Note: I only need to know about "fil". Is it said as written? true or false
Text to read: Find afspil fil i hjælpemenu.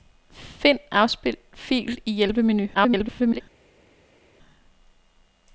true